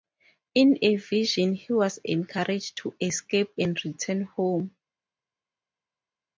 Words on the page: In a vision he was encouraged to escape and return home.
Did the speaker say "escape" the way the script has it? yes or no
yes